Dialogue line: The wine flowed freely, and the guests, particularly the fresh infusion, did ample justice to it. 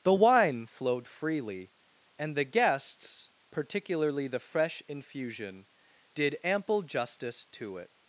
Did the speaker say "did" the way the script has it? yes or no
yes